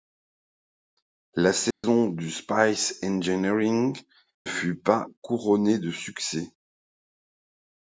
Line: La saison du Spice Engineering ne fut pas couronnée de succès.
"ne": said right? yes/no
no